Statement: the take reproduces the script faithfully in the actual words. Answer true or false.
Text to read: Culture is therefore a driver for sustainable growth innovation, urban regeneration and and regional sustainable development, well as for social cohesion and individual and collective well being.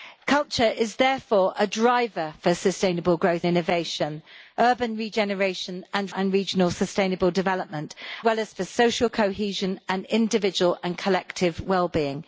true